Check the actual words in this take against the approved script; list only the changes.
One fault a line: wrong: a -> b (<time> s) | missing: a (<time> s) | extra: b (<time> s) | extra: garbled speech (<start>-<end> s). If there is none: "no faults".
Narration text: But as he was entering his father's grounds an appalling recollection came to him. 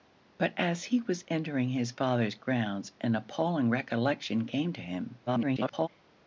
extra: garbled speech (5.3-5.9 s)